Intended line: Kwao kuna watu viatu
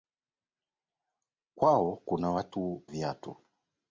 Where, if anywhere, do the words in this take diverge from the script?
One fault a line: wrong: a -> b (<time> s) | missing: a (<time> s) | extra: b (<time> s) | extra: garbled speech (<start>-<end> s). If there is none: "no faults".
no faults